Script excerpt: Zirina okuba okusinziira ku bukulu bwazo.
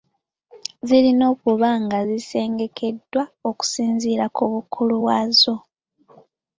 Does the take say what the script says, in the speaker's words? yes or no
no